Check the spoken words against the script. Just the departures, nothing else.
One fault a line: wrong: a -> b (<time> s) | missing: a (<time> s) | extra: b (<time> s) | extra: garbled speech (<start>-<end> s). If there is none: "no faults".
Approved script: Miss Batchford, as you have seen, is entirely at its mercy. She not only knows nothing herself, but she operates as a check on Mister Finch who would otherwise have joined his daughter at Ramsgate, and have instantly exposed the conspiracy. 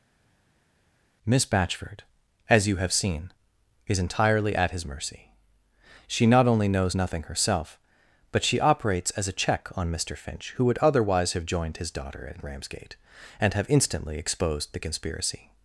wrong: its -> his (4.7 s)